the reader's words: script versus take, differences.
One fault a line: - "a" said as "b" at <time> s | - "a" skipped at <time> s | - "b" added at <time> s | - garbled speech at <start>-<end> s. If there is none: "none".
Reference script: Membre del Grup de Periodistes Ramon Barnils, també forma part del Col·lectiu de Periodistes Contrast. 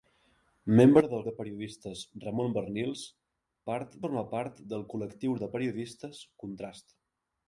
- "Grup" skipped at 1.2 s
- "també" said as "part" at 3.7 s